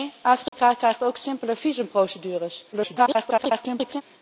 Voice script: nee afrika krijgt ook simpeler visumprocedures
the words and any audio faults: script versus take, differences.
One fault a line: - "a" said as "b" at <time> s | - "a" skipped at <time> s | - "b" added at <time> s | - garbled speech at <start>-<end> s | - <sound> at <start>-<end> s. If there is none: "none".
- dropout at 0.5-0.5 s
- garbled speech at 2.7-4.0 s